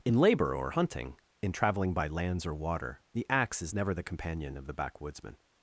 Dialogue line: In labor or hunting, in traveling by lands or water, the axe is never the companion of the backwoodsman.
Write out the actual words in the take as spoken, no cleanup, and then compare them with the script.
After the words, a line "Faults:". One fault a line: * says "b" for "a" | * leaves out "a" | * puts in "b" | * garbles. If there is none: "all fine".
In labor or hunting, in traveling by lands or water, the axe is never the companion of the backwoodsman.
Faults:
all fine